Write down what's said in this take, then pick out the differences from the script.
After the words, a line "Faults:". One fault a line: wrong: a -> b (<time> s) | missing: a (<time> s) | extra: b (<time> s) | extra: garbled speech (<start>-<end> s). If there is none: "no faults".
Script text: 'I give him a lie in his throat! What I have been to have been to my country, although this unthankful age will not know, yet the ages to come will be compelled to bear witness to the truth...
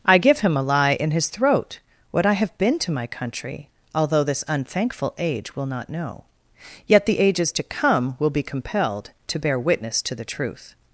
'I give him a lie in his throat! What I have been to my country, although this unthankful age will not know, yet the ages to come will be compelled to bear witness to the truth...
Faults:
missing: have been to (2.9 s)